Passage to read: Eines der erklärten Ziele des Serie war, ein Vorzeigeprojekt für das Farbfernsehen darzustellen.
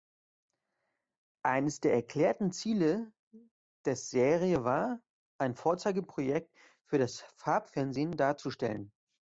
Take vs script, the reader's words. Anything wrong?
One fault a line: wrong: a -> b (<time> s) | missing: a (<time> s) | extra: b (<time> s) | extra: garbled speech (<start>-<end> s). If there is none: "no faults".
no faults